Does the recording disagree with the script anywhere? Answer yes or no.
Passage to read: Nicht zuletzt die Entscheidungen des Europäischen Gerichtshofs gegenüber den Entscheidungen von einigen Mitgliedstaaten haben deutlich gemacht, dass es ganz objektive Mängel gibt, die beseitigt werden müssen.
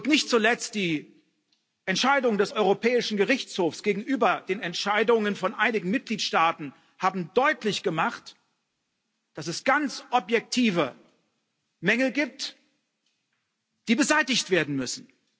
no